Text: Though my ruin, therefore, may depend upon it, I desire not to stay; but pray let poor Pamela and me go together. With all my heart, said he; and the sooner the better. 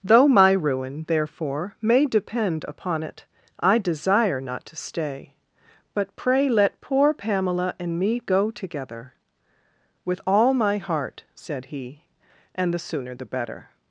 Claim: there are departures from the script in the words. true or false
false